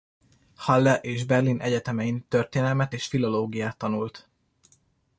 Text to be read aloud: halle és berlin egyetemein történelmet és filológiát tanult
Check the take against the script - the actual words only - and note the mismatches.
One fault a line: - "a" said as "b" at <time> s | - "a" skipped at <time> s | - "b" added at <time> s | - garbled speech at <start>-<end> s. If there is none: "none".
none